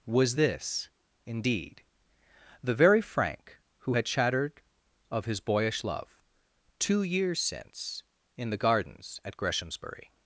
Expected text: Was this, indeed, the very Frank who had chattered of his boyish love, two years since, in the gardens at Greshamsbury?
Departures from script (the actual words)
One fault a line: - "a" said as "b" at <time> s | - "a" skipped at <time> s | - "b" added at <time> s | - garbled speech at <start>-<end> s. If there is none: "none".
none